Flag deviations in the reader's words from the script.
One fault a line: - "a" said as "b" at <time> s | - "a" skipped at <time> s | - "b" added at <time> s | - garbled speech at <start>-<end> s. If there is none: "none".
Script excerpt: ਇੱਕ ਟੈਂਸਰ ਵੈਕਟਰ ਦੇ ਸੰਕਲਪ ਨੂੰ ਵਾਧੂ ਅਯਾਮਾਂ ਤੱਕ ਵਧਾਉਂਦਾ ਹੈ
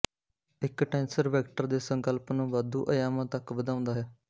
none